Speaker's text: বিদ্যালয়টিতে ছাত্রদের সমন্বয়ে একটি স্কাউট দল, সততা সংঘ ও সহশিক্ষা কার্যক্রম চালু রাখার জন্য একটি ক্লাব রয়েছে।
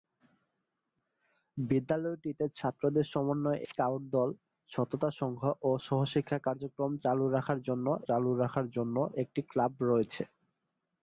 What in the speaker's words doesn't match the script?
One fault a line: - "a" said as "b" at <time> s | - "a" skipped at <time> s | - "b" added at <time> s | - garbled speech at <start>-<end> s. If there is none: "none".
- "একটি" skipped at 3.6 s
- "চালু রাখার জন্য" added at 8.1 s